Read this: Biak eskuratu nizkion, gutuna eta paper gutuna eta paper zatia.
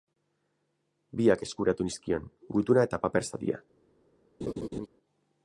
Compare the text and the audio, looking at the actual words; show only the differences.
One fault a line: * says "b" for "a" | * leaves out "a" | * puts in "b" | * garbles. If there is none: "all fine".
* leaves out "gutuna eta paper"